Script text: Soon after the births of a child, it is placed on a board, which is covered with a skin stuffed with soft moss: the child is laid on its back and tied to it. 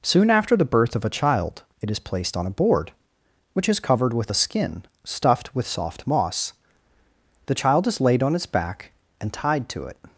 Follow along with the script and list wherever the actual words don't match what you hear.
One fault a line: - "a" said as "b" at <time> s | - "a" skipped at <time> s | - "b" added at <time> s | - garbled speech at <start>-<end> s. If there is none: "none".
- "births" said as "birth" at 0.7 s